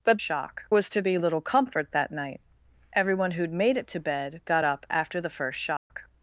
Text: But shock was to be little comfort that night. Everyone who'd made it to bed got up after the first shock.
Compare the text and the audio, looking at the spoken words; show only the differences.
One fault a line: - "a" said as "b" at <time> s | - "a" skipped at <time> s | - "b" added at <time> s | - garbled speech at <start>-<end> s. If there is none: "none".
none